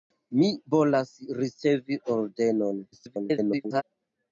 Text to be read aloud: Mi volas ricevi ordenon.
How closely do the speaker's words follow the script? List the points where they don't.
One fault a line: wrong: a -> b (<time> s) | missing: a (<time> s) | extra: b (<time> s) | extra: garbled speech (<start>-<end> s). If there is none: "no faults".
extra: garbled speech (2.9-3.8 s)